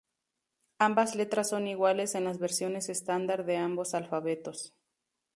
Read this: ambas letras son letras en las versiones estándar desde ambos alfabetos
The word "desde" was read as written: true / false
false